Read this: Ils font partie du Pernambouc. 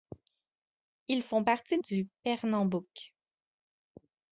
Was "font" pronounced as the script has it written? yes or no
yes